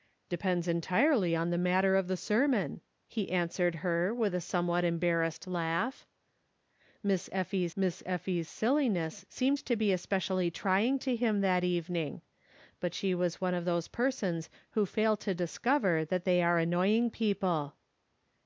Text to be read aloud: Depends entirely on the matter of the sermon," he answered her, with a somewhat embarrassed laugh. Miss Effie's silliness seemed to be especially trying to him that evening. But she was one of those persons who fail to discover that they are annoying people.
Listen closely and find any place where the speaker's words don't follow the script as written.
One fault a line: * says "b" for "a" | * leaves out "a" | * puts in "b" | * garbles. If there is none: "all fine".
* puts in "miss Effie's"